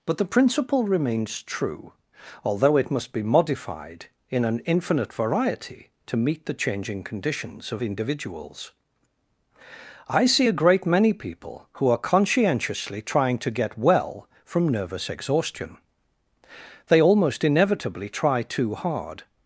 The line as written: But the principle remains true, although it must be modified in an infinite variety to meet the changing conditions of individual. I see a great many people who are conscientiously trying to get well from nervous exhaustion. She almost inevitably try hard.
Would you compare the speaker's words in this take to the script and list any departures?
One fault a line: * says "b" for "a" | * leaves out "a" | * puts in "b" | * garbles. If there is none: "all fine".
* says "individuals" for "individual"
* says "They" for "She"
* puts in "too"